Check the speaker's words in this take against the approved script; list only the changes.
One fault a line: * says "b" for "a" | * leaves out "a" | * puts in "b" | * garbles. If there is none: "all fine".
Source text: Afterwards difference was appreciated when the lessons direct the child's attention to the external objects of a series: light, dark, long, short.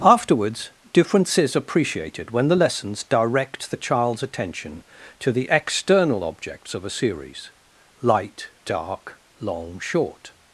* says "is" for "was"